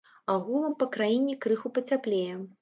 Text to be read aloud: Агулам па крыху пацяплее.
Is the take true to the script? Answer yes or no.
no